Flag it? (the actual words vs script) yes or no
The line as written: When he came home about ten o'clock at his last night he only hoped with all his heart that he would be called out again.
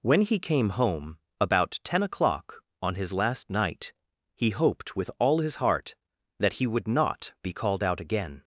yes